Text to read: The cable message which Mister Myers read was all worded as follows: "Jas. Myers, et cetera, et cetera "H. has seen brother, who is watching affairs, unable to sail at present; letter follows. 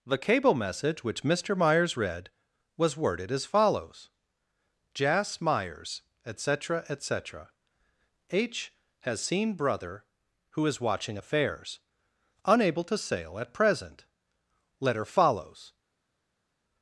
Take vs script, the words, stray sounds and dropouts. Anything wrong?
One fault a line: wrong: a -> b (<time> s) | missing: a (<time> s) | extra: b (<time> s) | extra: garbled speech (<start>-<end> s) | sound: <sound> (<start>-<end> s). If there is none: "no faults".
missing: all (3.0 s)